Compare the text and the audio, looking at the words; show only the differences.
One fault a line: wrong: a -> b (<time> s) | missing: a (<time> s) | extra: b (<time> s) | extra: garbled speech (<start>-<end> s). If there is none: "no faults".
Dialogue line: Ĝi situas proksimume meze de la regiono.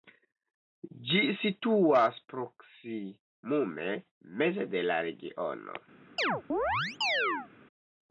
no faults